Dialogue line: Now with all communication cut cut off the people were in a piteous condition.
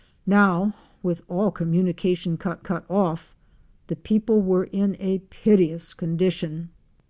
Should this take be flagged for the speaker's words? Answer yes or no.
no